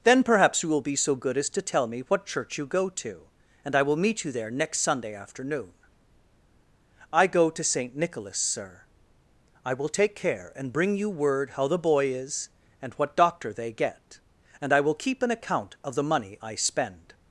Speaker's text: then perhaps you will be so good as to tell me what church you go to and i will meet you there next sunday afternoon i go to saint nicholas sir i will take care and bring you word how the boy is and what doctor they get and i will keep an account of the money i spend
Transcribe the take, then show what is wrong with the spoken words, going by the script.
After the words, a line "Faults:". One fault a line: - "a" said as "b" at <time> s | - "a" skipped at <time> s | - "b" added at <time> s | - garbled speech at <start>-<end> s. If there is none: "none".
then perhaps you will be so good as to tell me what church you go to and i will meet you there next sunday afternoon i go to saint nicholas sir i will take care and bring you word how the boy is and what doctor they get and i will keep an account of the money i spend
Faults:
none